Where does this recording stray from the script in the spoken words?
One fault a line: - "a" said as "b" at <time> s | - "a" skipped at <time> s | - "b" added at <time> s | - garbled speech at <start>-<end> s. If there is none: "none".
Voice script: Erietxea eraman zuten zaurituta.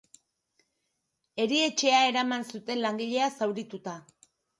- "langilea" added at 2.9 s